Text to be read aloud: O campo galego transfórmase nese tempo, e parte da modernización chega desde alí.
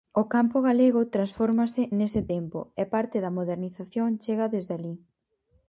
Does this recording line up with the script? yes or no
yes